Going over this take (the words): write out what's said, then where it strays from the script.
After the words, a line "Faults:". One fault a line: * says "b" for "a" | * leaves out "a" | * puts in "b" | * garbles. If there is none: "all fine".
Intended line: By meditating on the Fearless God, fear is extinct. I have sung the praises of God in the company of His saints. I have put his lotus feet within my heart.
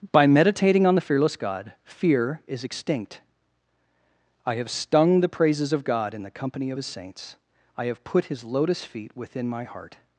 By meditating on the Fearless God, fear is extinct. I have stung the praises of God in the company of His saints. I have put his lotus feet within my heart.
Faults:
* says "stung" for "sung"